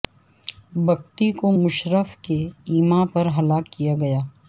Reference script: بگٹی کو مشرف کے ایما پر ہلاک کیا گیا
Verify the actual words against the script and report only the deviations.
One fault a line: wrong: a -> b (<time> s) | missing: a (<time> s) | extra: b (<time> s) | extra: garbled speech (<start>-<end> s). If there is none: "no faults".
no faults